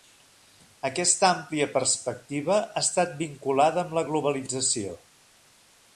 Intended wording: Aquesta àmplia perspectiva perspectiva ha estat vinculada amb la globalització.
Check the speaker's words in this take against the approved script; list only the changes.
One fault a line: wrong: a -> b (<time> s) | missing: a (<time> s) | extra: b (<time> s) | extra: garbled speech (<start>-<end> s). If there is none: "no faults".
missing: perspectiva (2.6 s)